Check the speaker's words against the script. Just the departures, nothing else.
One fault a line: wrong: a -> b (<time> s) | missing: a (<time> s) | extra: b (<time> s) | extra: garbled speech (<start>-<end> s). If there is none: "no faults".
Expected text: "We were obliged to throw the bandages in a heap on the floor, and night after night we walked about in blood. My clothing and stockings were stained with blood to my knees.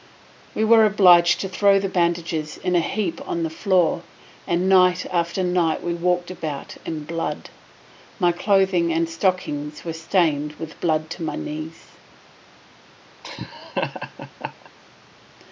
no faults